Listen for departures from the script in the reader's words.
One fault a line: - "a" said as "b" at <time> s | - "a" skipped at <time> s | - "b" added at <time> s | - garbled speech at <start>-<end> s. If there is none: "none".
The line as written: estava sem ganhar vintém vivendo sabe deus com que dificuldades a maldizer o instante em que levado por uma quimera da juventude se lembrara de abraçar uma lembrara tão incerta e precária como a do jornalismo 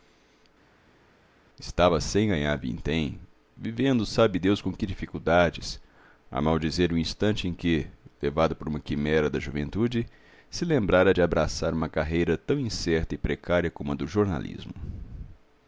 - "lembrara" said as "carreira" at 11.9 s